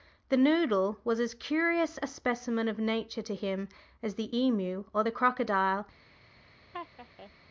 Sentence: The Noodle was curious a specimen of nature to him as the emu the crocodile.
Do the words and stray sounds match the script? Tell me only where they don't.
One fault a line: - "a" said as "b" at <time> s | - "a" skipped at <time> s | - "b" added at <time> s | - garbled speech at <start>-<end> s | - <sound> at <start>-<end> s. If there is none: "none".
- "as" added at 1.2 s
- "or" added at 4.9 s
- laugh at 6.7-7.3 s